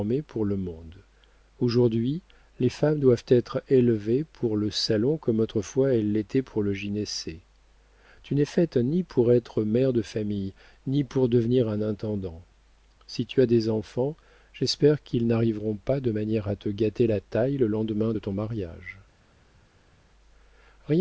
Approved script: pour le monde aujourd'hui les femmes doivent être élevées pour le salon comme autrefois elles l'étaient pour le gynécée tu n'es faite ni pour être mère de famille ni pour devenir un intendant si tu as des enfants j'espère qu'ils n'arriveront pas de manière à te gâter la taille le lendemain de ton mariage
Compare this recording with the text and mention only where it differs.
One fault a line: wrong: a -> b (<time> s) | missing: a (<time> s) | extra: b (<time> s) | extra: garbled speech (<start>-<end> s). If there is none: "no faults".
no faults